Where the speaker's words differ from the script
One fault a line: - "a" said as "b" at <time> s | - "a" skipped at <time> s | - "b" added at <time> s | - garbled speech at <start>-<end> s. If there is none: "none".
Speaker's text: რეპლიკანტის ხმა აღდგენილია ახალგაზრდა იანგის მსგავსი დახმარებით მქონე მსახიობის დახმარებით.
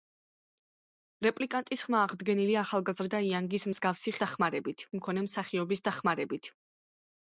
none